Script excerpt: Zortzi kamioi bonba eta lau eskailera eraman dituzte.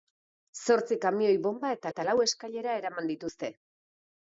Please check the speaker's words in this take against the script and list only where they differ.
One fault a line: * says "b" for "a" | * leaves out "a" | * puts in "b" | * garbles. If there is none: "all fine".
* puts in "eta"